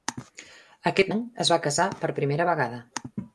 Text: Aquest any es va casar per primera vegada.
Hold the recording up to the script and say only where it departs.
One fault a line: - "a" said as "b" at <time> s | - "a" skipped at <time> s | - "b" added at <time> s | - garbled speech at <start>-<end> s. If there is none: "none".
none